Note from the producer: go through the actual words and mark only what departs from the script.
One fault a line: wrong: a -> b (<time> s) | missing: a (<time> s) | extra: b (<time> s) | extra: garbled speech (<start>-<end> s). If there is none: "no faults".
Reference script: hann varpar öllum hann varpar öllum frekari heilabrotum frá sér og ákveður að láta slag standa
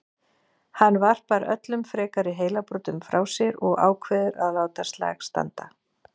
missing: hann varpar öllum (1.8 s)